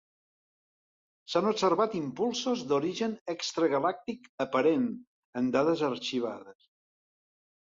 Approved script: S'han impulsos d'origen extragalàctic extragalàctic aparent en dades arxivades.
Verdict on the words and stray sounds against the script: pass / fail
fail